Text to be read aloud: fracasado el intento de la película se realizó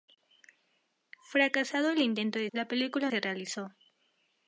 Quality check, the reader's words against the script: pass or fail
pass